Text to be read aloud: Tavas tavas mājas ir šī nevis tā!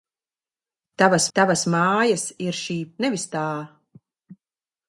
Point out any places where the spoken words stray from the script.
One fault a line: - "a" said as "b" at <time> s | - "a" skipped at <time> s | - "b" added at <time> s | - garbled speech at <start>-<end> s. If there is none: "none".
none